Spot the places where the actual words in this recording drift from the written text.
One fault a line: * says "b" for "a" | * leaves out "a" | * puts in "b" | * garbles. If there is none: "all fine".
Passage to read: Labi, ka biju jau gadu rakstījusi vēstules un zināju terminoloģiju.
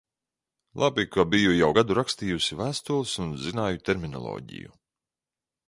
all fine